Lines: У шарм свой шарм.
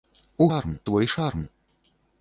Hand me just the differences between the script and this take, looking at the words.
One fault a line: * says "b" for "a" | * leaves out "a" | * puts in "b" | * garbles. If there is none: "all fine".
all fine